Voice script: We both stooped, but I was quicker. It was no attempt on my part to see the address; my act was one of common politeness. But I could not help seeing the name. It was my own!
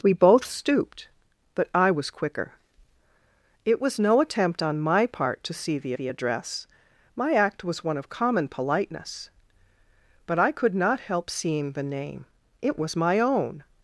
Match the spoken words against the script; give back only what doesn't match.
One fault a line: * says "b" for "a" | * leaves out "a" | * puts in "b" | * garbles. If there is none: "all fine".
* puts in "the"